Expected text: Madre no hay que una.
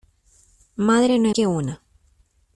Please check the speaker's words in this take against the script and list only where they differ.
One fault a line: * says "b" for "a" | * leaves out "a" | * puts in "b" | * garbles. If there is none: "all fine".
all fine